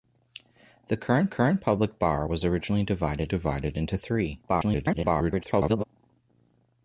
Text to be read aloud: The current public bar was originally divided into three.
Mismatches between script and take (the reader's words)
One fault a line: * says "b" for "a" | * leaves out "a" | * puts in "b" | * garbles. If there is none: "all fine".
* puts in "current"
* puts in "divided"
* garbles